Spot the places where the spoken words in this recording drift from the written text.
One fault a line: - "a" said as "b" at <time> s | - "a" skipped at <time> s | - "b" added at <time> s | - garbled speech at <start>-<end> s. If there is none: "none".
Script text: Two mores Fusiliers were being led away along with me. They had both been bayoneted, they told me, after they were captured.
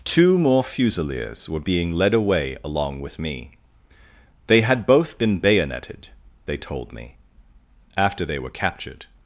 - "mores" said as "more" at 0.4 s